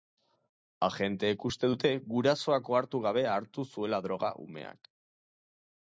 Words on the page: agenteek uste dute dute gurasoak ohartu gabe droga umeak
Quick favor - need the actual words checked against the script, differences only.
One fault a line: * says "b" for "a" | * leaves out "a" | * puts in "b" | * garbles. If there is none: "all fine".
* leaves out "dute"
* puts in "hartu zuela"